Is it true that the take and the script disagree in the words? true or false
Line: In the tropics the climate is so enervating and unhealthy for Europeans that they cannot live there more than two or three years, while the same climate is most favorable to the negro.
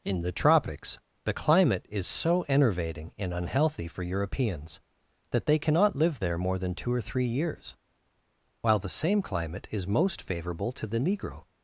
false